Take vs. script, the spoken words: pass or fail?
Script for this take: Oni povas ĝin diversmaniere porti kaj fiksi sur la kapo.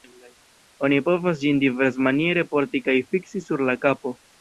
pass